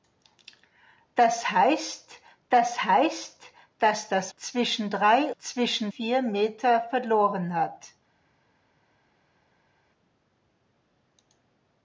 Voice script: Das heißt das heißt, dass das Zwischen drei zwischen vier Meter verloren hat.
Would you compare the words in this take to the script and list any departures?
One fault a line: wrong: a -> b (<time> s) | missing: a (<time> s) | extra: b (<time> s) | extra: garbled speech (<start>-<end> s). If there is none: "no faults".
no faults